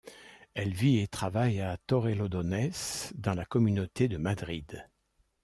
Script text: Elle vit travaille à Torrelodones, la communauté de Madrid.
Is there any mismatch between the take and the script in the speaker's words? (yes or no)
yes